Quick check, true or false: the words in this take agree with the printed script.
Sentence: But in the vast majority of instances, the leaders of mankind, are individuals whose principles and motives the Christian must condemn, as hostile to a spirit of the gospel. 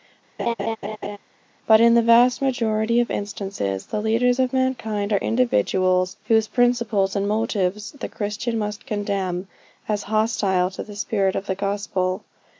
false